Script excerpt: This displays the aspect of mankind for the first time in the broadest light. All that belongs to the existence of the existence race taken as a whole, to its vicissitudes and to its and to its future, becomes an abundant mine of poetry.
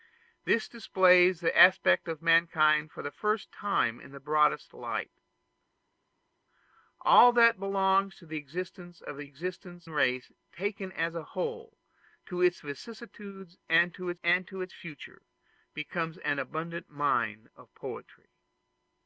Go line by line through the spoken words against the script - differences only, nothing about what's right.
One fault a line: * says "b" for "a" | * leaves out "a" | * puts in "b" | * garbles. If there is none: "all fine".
all fine